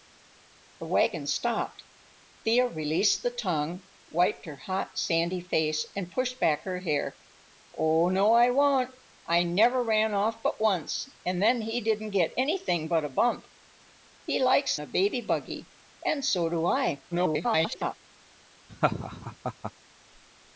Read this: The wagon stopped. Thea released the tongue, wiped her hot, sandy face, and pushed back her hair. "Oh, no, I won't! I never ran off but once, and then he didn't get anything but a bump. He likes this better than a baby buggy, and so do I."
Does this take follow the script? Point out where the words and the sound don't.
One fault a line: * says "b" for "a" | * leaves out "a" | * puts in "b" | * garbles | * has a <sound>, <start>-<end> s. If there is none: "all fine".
* leaves out "this better than"
* garbles
* has a laugh, 18.7-19.7 s